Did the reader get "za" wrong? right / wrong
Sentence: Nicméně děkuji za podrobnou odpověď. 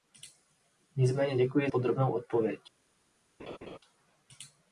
wrong